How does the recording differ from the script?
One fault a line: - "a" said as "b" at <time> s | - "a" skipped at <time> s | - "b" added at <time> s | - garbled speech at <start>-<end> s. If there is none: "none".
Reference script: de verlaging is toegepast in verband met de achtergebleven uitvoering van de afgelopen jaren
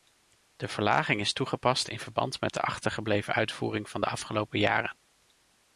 none